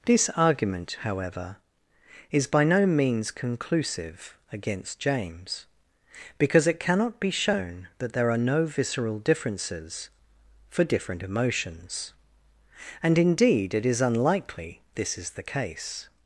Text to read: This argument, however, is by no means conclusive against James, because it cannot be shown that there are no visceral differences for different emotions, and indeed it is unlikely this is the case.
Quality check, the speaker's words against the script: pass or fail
pass